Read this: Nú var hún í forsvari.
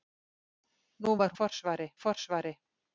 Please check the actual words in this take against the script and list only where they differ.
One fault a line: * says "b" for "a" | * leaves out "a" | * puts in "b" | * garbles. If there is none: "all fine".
* says "forsvari" for "hún"